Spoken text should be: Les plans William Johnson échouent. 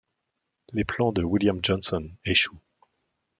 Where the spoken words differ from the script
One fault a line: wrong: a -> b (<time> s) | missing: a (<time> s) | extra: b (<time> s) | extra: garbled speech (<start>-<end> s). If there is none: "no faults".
extra: de (1.1 s)